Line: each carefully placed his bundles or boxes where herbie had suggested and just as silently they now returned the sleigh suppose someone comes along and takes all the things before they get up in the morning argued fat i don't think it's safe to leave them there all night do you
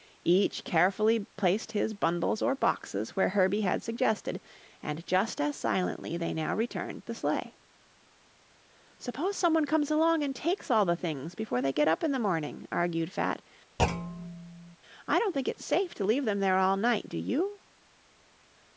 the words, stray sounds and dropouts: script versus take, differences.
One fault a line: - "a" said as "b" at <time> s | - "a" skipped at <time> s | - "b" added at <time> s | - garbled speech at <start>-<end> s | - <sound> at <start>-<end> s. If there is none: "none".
- thud at 13.8-14.8 s